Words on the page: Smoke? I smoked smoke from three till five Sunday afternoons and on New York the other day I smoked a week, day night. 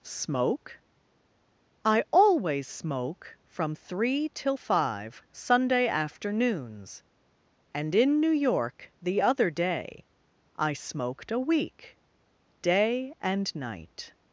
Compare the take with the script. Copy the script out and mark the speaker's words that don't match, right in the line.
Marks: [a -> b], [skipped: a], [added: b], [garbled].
Smoke? I [smoked -> always] smoke from three till five Sunday afternoons and [on -> in] New York the other day I smoked a week, day [added: and] night.